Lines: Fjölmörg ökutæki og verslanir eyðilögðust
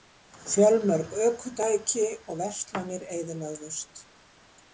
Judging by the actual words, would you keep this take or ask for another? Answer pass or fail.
pass